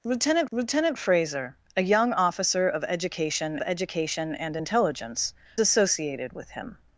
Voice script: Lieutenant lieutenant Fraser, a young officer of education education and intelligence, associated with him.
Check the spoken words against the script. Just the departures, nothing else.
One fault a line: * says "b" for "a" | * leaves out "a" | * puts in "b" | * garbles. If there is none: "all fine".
all fine